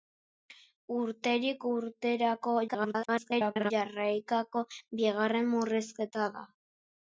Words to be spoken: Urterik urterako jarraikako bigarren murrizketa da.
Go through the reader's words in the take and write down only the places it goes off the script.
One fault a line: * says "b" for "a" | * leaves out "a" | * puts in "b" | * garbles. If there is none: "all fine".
* garbles